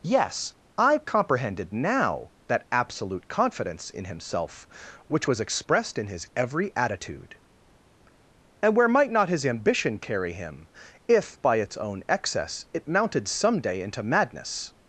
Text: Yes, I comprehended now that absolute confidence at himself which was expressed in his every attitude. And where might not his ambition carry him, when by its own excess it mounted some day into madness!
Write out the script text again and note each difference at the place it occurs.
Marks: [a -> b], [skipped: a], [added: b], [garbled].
Yes, I comprehended now that absolute confidence [at -> in] himself which was expressed in his every attitude. And where might not his ambition carry him, [when -> if] by its own excess it mounted some day into madness!